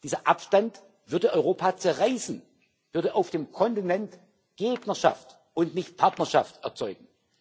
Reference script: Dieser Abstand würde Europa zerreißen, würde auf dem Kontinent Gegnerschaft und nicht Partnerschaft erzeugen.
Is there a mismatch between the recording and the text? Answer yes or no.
no